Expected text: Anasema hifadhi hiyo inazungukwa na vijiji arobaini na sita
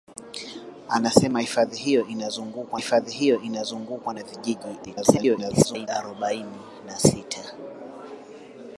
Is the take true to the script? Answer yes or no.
no